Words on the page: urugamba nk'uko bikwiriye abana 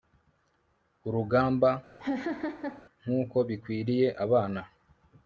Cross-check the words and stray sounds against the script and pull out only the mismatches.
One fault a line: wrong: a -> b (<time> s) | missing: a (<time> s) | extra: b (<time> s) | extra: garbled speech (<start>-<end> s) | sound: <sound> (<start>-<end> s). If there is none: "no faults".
sound: laugh (2.0-2.8 s)